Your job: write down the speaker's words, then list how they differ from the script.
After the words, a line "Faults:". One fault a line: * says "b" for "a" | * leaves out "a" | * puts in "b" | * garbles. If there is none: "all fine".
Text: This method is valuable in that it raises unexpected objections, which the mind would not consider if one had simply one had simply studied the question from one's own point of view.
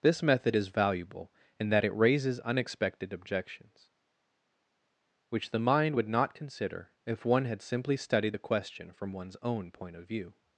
This method is valuable in that it raises unexpected objections, which the mind would not consider if one had simply studied the question from one's own point of view.
Faults:
* leaves out "one had simply"